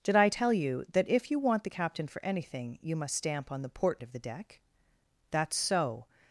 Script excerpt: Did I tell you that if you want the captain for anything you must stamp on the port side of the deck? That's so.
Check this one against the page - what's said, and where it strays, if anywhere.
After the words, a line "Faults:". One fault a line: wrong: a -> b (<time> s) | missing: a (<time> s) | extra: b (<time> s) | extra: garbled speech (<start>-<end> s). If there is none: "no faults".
Did I tell you that if you want the captain for anything you must stamp on the port of the deck? That's so.
Faults:
missing: side (4.0 s)